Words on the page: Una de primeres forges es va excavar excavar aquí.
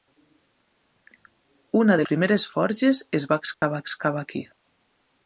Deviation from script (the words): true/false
false